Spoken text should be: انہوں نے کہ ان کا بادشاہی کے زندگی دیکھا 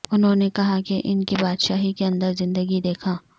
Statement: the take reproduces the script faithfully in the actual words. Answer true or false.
false